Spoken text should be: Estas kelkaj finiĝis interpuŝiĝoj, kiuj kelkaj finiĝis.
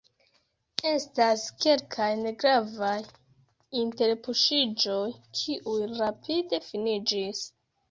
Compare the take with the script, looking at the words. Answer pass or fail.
fail